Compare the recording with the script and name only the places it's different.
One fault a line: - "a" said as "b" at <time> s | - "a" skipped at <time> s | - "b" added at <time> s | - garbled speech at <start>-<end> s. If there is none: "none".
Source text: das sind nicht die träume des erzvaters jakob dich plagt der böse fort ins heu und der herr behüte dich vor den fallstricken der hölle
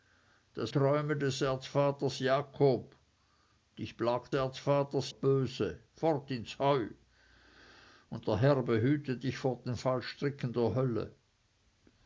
- "sind nicht die" skipped at 0.7 s
- "der" said as "erzvaters" at 4.3 s